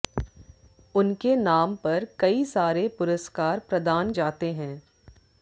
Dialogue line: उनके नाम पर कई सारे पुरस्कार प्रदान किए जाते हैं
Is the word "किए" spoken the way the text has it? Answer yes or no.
no